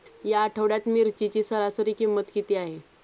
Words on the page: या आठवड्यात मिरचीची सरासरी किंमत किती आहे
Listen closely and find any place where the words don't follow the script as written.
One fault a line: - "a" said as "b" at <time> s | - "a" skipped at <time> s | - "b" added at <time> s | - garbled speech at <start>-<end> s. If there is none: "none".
none